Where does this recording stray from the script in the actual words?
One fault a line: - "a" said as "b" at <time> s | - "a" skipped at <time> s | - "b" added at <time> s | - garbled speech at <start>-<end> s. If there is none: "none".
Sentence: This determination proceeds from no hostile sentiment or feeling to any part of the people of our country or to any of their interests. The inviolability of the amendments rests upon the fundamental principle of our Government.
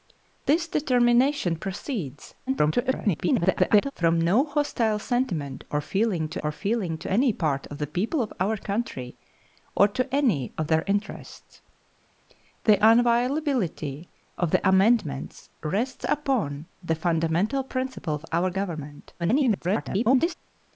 - garbled speech at 2.5-3.9 s
- "or feeling to" added at 6.4 s
- garbled speech at 19.2-20.3 s